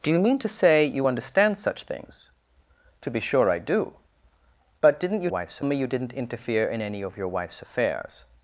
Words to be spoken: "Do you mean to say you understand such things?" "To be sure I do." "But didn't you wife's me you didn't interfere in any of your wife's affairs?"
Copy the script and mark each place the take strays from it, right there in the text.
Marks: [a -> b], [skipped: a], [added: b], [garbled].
"Do you mean to say you understand such things?" "To be sure I do." "But didn't you wife's me you didn't interfere in any of your wife's affairs?"